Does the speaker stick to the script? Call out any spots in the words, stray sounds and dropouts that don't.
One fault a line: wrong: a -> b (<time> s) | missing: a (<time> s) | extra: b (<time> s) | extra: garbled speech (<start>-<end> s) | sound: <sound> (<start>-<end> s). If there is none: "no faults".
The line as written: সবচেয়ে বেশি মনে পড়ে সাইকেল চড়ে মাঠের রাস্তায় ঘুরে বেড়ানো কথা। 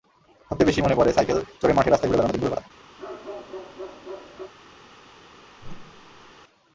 extra: দিনগুলোর (2.3 s)
sound: bark (3.0-4.5 s)
sound: whoosh (5.6-6.3 s)